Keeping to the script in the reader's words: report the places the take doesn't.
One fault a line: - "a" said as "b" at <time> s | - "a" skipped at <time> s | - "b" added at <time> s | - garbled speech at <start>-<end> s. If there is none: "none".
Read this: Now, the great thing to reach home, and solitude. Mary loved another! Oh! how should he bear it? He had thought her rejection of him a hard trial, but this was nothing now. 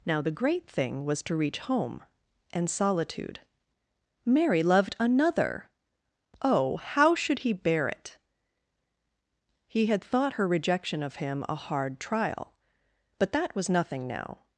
- "was" added at 1.1 s
- "this" said as "that" at 13.3 s